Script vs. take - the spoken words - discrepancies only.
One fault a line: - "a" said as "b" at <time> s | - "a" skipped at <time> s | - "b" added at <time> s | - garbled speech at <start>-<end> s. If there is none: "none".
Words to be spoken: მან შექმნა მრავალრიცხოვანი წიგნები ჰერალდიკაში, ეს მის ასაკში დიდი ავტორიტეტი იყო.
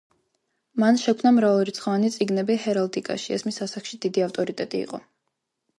none